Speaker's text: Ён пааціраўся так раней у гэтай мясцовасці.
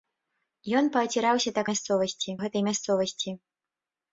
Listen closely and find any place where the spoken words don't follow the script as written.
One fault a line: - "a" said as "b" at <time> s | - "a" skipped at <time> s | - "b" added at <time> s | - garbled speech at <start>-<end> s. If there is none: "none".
- "раней" said as "мясцовасці" at 1.7 s